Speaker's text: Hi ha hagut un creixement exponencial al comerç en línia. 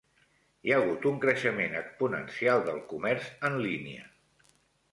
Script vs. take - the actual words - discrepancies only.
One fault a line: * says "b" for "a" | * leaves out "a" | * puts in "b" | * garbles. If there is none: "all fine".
* says "del" for "al"